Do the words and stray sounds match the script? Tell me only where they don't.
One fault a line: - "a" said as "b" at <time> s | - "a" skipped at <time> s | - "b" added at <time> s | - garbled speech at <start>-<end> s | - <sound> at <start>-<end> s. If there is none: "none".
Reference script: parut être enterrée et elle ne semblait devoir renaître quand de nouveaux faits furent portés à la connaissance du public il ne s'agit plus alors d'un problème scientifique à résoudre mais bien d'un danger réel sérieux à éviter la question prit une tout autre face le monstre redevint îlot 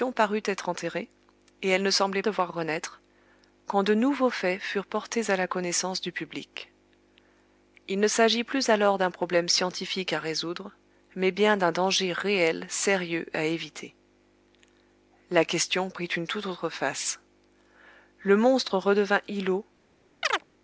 - chirp at 20.2-20.4 s